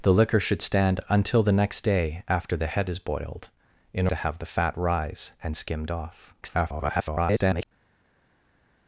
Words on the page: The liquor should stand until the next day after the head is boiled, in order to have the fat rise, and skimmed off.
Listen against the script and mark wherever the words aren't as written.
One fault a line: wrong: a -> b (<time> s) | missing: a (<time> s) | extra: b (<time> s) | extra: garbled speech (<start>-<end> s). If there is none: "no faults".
missing: order (4.1 s)
extra: garbled speech (6.4-7.7 s)